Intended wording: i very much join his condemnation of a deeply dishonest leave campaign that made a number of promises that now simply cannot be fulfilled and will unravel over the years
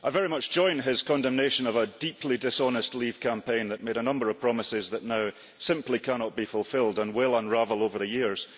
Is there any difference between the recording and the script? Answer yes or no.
no